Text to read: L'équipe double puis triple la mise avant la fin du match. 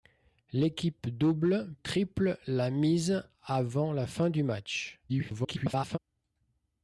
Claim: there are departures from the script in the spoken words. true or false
true